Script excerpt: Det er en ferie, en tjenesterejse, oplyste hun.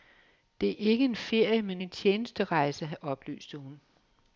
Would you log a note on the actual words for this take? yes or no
yes